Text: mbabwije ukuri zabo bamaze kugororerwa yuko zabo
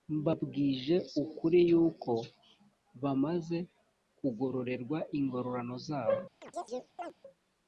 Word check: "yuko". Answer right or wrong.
wrong